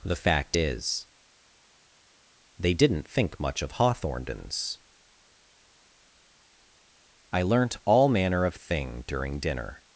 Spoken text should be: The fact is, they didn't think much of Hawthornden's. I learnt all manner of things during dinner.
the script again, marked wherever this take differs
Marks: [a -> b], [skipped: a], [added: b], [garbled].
The fact is, they didn't think much of Hawthornden's. I learnt all manner of [things -> thing] during dinner.